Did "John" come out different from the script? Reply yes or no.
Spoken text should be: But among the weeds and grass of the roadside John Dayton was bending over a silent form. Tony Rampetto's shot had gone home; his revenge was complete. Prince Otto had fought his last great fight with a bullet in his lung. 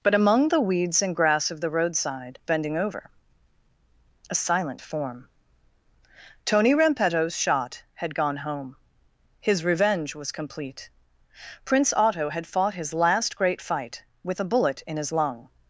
yes